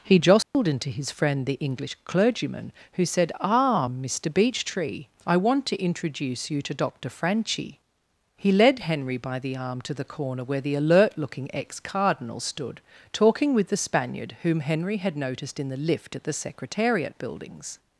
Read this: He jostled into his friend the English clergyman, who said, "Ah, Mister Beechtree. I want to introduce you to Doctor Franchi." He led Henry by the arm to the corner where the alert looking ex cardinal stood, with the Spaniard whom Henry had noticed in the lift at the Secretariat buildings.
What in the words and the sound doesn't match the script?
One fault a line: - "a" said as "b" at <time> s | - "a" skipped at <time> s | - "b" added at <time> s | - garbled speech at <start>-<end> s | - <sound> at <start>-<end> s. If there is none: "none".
- dropout at 0.4-0.5 s
- "talking" added at 13.1 s